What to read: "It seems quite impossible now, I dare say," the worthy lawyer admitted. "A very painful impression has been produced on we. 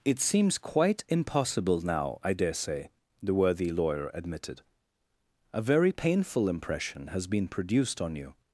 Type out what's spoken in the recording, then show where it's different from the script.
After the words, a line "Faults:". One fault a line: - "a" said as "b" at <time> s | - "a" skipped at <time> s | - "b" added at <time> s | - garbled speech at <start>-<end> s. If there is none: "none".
"It seems quite impossible now, I dare say," the worthy lawyer admitted. "A very painful impression has been produced on you.
Faults:
- "we" said as "you" at 8.2 s